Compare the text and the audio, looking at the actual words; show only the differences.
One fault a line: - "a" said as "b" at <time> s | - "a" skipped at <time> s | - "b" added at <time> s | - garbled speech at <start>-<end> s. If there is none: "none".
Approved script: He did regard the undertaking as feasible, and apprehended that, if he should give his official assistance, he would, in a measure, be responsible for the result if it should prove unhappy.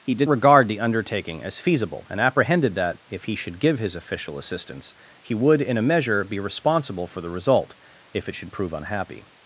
none